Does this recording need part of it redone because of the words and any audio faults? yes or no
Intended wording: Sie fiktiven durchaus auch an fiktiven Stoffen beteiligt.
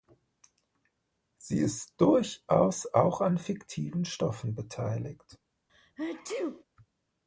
yes